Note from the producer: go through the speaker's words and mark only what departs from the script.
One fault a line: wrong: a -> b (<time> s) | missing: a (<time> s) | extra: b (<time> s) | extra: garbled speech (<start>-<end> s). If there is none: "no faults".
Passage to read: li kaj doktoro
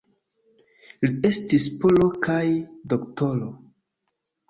extra: estis polo (1.3 s)